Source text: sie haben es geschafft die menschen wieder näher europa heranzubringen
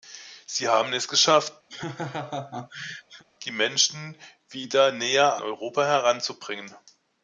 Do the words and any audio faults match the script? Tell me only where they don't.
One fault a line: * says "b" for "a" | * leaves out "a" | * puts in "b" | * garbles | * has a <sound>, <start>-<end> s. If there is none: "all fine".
* has a laugh, 1.7-3.2 s